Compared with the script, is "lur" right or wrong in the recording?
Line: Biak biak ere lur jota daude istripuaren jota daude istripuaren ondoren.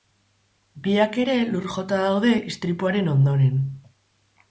right